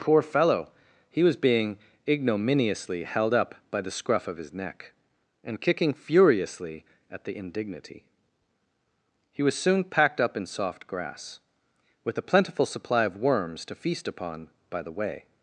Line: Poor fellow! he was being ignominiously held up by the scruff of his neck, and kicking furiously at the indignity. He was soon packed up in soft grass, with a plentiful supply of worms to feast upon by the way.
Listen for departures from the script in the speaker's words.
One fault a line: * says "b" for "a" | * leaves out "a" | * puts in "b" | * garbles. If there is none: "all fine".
all fine